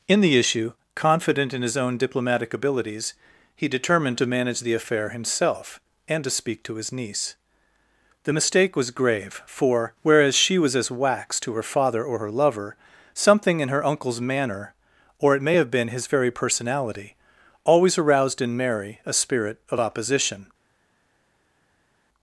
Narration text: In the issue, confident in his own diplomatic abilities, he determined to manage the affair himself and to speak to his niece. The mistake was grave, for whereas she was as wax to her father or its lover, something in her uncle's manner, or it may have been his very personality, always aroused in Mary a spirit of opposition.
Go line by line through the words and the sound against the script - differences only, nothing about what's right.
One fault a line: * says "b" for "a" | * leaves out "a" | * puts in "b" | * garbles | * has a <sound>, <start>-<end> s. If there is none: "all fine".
* says "her" for "its"